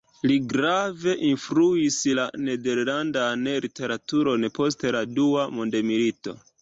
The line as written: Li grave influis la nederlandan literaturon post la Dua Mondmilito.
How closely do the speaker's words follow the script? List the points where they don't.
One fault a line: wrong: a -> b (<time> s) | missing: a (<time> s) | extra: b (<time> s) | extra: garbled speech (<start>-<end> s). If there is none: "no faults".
no faults